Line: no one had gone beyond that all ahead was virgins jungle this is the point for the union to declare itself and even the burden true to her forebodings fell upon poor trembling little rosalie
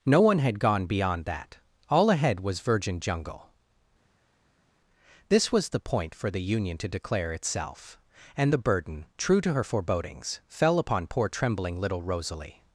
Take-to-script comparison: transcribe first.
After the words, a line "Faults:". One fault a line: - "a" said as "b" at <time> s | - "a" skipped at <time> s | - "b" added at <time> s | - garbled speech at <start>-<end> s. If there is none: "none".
no one had gone beyond that all ahead was virgin jungle this was the point for the union to declare itself and the burden true to her forebodings fell upon poor trembling little rosalie
Faults:
- "virgins" said as "virgin" at 2.6 s
- "is" said as "was" at 5.5 s
- "even" skipped at 8.5 s